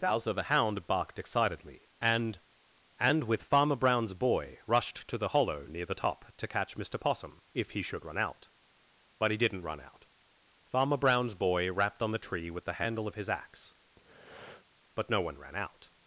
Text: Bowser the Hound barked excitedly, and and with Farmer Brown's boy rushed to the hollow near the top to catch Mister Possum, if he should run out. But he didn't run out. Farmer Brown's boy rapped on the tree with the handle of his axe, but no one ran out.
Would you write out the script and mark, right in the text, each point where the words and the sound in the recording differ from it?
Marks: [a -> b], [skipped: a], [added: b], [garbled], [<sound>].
Bowser the Hound barked excitedly, and and with Farmer Brown's boy rushed to the hollow near the top to catch Mister Possum, if he should run out. But he didn't run out. Farmer Brown's boy rapped on the tree with the handle of his axe, [breath] but no one ran out.